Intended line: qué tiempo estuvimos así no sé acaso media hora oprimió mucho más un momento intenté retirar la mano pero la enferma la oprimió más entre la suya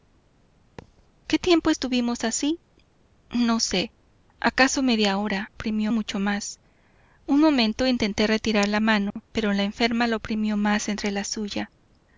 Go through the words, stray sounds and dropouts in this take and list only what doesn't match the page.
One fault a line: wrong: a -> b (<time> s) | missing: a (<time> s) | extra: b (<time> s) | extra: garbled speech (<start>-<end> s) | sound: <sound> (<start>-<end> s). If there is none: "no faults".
sound: thud (0.8-1.1 s)
sound: dropout (9.1-9.2 s)